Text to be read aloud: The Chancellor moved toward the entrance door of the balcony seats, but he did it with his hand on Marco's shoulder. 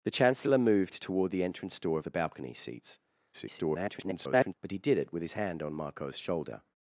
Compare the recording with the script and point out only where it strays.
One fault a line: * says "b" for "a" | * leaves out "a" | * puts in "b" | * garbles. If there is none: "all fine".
* garbles